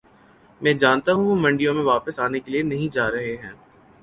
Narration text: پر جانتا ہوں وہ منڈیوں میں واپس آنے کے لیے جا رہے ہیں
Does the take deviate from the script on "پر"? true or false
true